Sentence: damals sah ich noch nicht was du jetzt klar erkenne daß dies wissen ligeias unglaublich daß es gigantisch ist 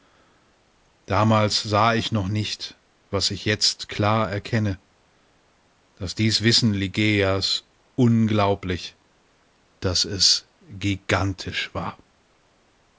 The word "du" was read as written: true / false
false